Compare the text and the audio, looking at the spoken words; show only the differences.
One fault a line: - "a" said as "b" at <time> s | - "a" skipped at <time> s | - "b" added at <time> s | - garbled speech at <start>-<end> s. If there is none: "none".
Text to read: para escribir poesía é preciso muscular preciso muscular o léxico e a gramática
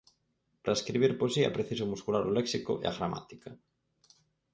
- "preciso muscular" skipped at 2.2 s